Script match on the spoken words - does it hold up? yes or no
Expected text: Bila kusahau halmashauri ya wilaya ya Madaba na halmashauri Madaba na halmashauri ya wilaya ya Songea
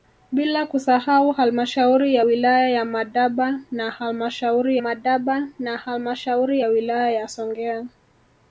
yes